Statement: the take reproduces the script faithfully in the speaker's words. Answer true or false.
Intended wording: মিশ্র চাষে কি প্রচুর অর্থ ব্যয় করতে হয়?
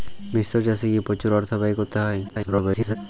false